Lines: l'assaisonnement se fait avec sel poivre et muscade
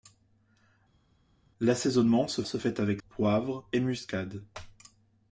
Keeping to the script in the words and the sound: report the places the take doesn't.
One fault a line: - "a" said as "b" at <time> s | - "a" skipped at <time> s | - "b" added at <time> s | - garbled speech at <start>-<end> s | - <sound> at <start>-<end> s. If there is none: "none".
- "se" added at 2.4 s
- "sel" skipped at 3.0 s